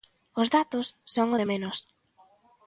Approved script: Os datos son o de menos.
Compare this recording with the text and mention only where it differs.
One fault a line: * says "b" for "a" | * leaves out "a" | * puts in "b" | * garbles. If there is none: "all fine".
all fine